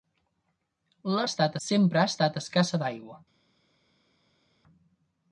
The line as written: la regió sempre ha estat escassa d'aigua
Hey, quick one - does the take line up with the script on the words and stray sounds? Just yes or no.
no